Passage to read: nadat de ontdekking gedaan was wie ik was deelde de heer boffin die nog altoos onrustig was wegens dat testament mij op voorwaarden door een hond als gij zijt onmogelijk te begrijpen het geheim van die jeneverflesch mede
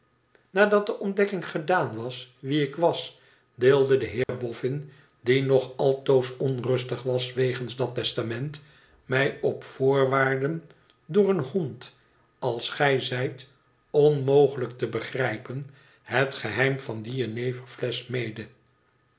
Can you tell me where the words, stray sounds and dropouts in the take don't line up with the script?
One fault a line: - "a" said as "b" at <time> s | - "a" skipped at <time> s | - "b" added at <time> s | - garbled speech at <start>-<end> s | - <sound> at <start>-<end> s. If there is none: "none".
- dropout at 4.2-4.3 s